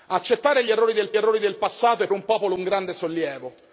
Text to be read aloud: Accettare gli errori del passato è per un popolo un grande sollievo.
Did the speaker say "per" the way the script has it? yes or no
no